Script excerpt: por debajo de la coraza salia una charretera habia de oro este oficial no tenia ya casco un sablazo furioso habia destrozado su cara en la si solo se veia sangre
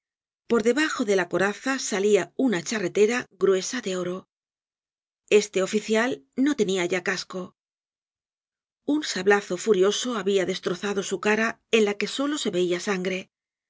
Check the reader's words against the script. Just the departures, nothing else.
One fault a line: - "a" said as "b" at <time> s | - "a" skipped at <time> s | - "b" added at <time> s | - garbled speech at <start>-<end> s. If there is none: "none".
- "habia" said as "gruesa" at 3.4 s
- "si" said as "que" at 11.9 s